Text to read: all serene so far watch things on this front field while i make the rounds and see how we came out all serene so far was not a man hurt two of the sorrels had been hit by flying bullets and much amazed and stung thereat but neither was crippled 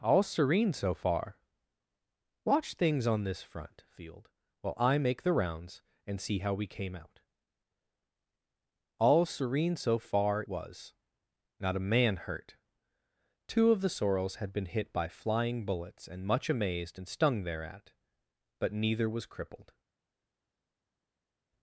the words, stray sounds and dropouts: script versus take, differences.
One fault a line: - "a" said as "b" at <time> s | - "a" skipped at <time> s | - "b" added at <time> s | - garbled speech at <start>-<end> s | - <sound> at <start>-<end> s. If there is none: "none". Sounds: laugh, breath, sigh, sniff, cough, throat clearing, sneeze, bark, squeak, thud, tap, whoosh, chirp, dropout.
none